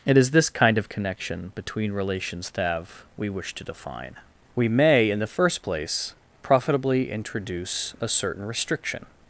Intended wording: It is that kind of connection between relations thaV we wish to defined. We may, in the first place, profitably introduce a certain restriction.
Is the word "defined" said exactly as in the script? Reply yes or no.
no